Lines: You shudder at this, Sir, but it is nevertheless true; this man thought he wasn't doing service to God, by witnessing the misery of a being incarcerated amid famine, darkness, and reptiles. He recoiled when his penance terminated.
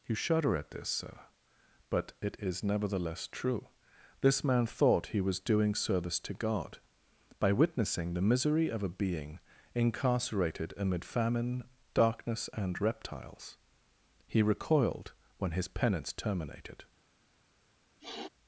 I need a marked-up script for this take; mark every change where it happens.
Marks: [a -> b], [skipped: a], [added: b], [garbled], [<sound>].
You shudder at this, Sir, but it is nevertheless true; this man thought he [wasn't -> was] doing service to God, by witnessing the misery of a being incarcerated amid famine, darkness, and reptiles. He recoiled when his penance terminated. [sniff]